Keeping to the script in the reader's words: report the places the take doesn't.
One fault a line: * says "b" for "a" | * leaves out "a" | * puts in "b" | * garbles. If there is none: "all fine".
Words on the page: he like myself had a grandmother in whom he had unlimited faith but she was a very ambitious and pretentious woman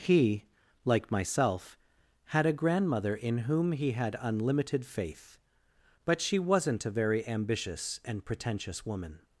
* says "wasn't" for "was"